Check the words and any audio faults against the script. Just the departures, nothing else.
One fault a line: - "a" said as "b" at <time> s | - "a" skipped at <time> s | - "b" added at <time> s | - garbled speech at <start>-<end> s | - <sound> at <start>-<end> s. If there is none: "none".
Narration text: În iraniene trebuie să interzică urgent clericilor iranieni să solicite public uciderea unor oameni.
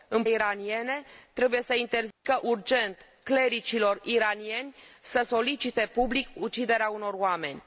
- dropout at 2.1-2.2 s